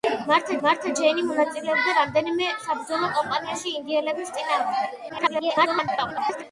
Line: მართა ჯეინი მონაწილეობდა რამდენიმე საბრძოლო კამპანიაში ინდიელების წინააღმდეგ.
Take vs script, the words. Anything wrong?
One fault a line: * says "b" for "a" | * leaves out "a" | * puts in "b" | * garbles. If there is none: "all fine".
* puts in "მართა"
* garbles